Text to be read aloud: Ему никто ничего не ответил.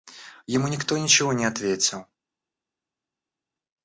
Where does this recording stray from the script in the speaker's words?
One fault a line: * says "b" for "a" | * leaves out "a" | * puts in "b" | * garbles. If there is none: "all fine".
all fine